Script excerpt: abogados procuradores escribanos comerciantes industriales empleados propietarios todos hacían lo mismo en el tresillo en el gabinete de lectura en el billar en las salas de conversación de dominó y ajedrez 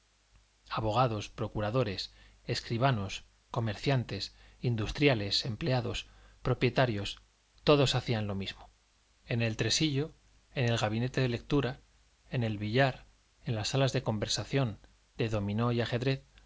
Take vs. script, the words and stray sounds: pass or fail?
pass